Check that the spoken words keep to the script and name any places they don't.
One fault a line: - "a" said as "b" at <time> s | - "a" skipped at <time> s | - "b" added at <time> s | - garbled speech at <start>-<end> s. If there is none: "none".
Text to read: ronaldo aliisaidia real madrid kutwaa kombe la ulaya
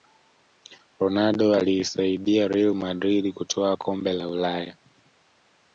none